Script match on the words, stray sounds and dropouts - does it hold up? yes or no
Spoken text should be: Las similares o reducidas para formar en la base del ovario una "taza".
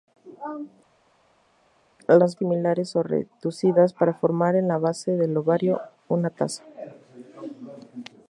yes